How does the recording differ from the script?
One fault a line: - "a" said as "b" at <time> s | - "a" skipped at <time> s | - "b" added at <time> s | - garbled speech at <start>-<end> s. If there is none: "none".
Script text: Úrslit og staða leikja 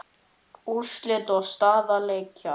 none